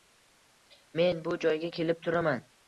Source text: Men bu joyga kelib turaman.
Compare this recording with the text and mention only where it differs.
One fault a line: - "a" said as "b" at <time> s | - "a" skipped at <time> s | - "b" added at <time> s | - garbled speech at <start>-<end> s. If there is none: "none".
none